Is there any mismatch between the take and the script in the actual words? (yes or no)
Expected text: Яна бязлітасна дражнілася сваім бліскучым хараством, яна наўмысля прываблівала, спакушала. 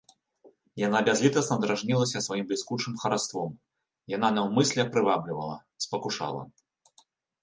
no